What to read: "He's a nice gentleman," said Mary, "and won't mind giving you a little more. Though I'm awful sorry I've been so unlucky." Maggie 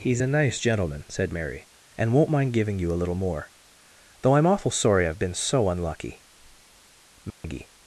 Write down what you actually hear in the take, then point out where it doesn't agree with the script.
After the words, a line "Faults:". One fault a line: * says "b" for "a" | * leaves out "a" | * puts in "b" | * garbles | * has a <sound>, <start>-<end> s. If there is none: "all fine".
"He's a nice gentleman," said Mary, "and won't mind giving you a little more. Though I'm awful sorry I've been so unlucky." Maggie
Faults:
* has a dropout, 7.3-7.4 s